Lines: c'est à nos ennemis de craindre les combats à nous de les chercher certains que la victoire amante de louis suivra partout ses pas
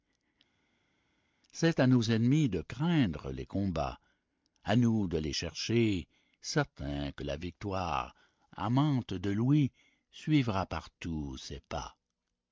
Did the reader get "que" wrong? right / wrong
right